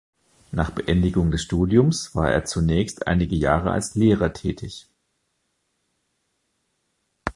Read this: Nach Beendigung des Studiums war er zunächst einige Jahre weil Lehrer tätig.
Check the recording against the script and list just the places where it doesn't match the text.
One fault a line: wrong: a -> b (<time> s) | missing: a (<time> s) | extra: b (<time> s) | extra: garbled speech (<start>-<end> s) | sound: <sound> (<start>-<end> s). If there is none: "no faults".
wrong: weil -> als (3.7 s)